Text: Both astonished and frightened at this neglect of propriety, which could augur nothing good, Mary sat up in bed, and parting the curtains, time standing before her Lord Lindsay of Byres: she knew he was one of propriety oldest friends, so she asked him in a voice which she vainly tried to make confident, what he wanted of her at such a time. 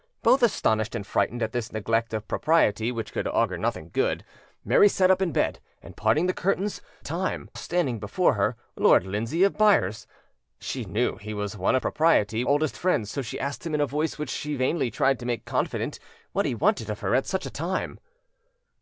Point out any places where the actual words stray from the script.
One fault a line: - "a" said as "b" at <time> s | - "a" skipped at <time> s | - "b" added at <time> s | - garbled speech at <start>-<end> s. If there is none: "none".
none